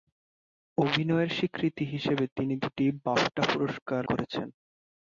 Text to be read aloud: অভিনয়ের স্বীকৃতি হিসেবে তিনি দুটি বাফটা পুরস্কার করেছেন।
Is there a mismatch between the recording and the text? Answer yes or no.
no